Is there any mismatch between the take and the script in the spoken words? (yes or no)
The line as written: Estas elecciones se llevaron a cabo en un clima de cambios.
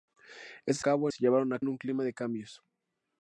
yes